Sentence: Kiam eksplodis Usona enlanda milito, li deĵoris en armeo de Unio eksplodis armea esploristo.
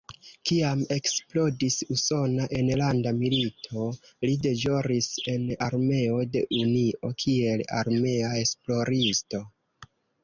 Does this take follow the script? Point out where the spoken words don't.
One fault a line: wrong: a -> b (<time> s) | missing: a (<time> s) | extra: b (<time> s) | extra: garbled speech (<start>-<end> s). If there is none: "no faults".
wrong: eksplodis -> kiel (7.2 s)